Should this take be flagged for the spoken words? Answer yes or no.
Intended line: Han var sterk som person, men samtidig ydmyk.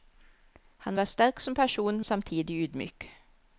yes